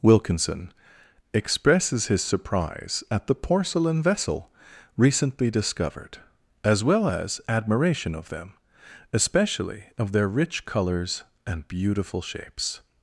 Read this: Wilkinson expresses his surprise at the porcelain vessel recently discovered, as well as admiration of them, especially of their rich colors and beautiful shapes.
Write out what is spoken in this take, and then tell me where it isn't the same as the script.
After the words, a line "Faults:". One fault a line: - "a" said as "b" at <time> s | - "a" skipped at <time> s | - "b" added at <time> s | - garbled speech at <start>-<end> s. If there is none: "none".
Wilkinson expresses his surprise at the porcelain vessel recently discovered, as well as admiration of them, especially of their rich colors and beautiful shapes.
Faults:
none